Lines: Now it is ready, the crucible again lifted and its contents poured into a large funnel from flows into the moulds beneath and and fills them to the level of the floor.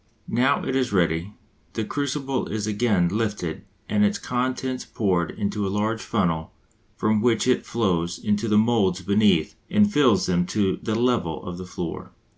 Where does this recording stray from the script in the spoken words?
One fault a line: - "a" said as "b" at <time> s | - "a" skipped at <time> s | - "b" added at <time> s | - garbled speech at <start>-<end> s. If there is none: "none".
- "is" added at 2.5 s
- "which it" added at 7.2 s
- "and" skipped at 9.9 s